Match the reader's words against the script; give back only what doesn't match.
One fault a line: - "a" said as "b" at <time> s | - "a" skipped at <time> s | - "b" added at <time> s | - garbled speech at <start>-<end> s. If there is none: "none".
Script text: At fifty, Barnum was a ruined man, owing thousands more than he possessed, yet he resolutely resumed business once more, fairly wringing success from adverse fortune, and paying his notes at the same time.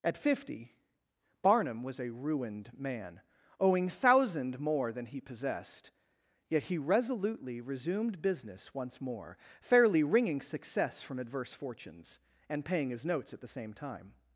- "thousands" said as "thousand" at 3.9 s
- "fortune" said as "fortunes" at 11.5 s